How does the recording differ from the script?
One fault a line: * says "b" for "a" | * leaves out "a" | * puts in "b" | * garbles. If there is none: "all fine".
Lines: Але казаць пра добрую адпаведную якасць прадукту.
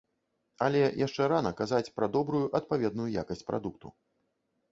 * puts in "яшчэ рана"